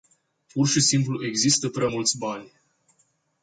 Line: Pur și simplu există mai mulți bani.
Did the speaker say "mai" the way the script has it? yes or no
no